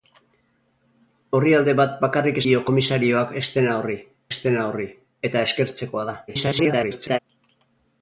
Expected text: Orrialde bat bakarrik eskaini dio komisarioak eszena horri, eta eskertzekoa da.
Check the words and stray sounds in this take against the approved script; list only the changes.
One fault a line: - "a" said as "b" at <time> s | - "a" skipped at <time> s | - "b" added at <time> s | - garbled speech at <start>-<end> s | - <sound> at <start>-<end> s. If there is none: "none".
- "eskaini" skipped at 2.4 s
- "eszena horri" added at 4.3 s
- garbled speech at 6.3-7.2 s